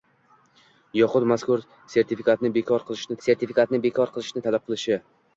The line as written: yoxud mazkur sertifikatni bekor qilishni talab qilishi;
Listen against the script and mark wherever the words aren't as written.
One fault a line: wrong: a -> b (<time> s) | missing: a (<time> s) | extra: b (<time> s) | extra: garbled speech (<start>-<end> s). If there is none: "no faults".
extra: sertifikatni bekor qilishni (3.3 s)